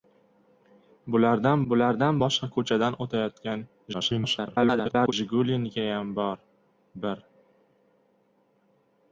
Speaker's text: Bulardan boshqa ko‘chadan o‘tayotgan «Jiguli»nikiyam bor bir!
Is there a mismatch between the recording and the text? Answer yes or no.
yes